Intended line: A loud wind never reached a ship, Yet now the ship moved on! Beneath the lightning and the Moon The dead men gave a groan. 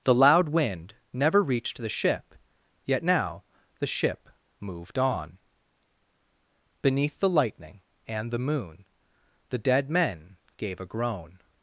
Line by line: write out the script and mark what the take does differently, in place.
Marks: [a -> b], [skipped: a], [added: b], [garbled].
[A -> The] loud wind never reached [a -> the] ship, Yet now the ship moved on! Beneath the lightning and the Moon The dead men gave a groan.